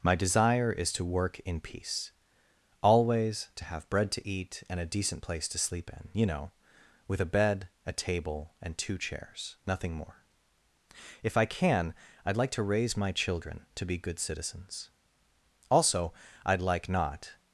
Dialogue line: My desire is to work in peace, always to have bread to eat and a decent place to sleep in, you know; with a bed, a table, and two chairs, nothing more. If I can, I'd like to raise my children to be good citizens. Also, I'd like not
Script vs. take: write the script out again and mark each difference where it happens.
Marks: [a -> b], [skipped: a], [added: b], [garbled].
My desire is to work in peace, always to have bread to eat and a decent place to sleep in, you know; with a bed, a table, and two chairs, nothing more. If I can, I'd like to raise my children to be good citizens. Also, I'd like not